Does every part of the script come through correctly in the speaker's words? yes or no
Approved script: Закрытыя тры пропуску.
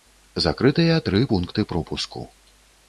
no